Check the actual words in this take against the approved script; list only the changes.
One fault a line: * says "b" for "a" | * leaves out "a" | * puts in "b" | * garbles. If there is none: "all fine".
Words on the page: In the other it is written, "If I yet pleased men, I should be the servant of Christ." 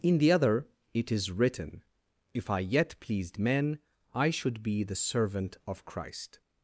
all fine